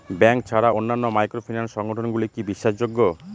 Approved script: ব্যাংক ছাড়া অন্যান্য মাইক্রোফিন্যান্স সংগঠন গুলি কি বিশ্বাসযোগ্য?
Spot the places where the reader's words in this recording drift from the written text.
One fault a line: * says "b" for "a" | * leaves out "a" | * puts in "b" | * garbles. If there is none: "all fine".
all fine